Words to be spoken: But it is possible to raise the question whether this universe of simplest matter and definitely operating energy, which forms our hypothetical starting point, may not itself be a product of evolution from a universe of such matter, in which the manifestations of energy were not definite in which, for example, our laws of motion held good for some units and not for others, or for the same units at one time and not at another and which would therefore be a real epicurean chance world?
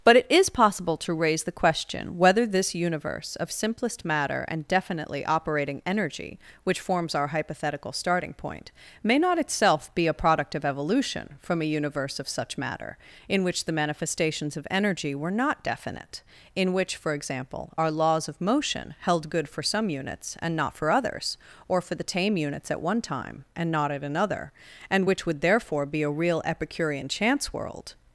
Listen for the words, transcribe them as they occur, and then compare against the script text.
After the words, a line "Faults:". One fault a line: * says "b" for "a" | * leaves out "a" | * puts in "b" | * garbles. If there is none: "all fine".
But it is possible to raise the question whether this universe of simplest matter and definitely operating energy, which forms our hypothetical starting point, may not itself be a product of evolution from a universe of such matter, in which the manifestations of energy were not definite in which, for example, our laws of motion held good for some units and not for others, or for the tame units at one time and not at another and which would therefore be a real epicurean chance world?
Faults:
* says "tame" for "same"